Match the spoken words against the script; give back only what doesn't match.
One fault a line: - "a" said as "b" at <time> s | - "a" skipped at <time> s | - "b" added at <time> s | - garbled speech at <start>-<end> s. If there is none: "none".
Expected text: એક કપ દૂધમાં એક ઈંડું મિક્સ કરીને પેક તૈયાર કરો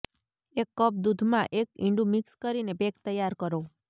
none